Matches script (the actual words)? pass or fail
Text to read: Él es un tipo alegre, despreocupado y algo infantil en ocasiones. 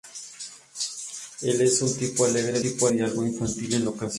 fail